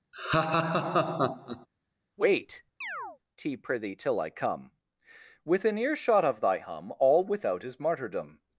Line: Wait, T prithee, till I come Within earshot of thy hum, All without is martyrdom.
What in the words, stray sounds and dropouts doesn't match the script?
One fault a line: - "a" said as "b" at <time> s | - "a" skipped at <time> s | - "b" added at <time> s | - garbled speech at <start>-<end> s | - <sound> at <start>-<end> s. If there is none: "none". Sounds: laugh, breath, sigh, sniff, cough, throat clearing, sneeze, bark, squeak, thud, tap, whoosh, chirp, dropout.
- laugh at 0.1-1.7 s
- chirp at 2.8-3.2 s